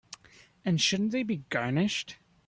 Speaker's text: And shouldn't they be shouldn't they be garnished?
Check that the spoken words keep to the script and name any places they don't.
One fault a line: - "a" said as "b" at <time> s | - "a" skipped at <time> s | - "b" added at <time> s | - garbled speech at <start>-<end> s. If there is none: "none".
- "shouldn't they be" skipped at 1.4 s